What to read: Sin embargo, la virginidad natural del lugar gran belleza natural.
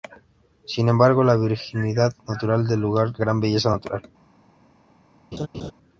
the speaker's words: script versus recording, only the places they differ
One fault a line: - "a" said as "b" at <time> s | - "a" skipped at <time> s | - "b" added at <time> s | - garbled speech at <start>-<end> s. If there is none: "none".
none